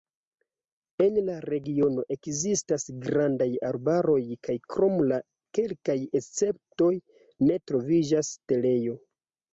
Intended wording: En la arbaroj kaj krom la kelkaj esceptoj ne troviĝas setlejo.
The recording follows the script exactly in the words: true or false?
false